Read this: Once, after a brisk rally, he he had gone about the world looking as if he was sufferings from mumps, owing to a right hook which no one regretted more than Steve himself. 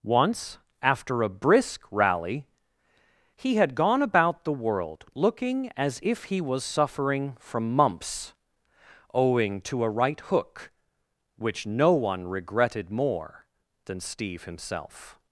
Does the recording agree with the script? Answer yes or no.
no